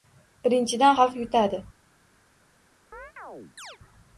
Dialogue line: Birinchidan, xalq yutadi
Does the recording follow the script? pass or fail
pass